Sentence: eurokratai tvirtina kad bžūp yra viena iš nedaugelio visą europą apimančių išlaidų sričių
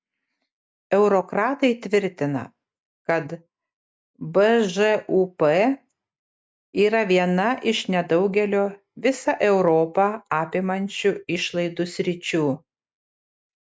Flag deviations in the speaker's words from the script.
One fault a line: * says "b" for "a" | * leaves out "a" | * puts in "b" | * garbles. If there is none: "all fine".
all fine